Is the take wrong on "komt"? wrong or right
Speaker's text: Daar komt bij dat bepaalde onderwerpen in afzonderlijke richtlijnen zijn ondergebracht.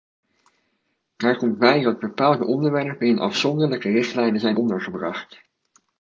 right